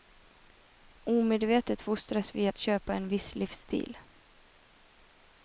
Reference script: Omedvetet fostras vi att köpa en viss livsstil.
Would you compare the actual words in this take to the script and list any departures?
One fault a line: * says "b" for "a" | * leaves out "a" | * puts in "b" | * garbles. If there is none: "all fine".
all fine